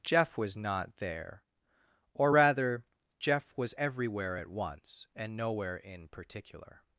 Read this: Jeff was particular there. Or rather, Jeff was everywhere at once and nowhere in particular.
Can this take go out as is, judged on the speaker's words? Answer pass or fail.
fail